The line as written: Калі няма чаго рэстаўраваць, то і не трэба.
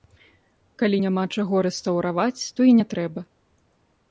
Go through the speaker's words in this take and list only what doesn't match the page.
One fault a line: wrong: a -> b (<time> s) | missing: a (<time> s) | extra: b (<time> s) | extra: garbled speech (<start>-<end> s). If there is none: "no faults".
no faults